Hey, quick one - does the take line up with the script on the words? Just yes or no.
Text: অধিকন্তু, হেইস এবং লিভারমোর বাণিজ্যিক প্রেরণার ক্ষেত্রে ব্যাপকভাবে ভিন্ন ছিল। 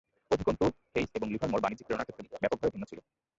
yes